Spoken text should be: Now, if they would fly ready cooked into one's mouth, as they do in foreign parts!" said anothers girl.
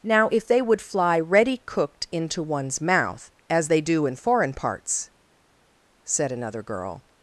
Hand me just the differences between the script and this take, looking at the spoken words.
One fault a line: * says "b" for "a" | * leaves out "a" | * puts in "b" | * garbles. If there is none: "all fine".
* says "another" for "anothers"